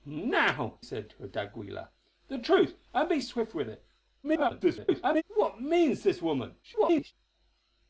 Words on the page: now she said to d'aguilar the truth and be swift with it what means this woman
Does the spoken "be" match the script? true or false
true